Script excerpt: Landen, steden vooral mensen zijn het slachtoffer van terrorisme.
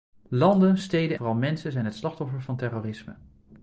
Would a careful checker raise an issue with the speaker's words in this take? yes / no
no